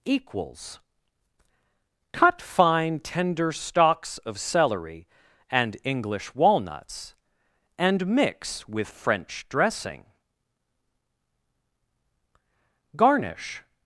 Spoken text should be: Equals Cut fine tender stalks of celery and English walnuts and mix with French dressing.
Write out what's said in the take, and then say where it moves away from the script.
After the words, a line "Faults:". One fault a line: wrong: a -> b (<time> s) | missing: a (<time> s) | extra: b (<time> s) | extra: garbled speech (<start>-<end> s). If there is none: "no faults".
Equals Cut fine tender stalks of celery and English walnuts and mix with French dressing. Garnish
Faults:
extra: Garnish (12.9 s)